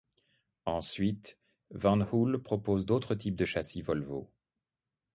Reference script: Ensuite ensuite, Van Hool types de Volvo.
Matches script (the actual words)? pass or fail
fail